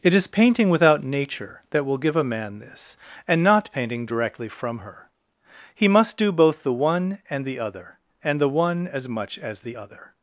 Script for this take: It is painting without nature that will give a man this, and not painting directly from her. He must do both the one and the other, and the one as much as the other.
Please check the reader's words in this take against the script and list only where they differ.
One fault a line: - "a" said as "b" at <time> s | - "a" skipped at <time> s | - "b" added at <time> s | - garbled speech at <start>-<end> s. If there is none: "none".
none